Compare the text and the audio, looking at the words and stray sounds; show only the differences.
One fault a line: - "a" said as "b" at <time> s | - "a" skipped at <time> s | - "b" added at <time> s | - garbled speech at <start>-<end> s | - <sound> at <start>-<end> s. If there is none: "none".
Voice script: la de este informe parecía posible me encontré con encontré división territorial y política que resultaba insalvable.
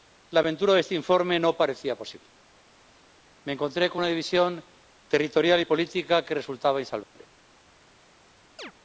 - "aventura" added at 0.4 s
- "no" added at 1.4 s
- "encontré" said as "una" at 4.0 s
- dropout at 7.0-7.2 s
- chirp at 8.6-8.7 s